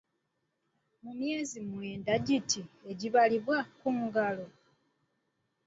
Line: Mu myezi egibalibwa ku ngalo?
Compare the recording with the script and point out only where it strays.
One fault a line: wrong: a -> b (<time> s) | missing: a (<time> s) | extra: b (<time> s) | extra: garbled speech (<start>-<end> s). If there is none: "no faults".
extra: mwenda giti (1.7 s)